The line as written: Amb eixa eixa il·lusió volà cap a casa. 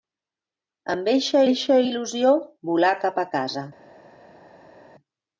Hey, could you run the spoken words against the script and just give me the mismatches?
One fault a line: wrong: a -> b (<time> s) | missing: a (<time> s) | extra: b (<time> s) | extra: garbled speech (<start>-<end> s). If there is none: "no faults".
no faults